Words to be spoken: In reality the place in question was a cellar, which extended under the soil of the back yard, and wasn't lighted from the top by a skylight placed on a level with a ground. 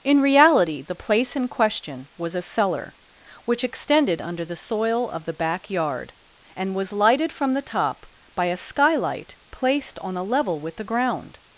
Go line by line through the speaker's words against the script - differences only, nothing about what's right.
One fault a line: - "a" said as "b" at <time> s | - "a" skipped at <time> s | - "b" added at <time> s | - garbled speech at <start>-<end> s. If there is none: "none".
- "wasn't" said as "was" at 6.7 s
- "a" said as "the" at 10.8 s